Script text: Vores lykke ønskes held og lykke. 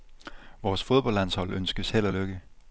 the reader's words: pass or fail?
fail